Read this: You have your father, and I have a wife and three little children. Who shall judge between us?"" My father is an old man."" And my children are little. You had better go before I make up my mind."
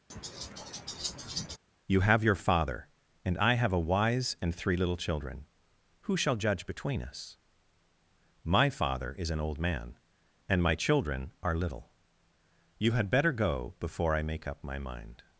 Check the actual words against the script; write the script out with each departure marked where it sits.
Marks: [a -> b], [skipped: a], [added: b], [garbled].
You have your father, and I have a [wife -> wise] and three little children. Who shall judge between us?"" My father is an old man."" And my children are little. You had better go before I make up my mind."